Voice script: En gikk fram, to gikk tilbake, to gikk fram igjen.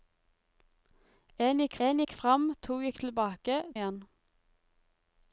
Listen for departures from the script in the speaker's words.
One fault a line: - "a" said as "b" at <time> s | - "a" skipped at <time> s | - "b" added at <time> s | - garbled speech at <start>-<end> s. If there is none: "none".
- "fram to" said as "en" at 1.9 s
- "tilbake" said as "fram" at 2.2 s
- "fram" said as "tilbake" at 3.0 s